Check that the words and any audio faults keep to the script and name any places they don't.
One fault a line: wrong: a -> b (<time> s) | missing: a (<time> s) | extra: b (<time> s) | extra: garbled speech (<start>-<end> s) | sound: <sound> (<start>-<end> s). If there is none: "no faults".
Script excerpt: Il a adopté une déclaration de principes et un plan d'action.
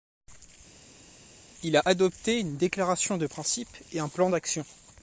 no faults